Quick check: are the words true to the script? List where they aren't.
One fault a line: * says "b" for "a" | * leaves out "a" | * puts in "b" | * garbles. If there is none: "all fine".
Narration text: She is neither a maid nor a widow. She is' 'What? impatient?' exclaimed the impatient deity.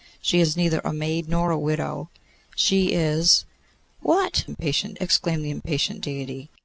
all fine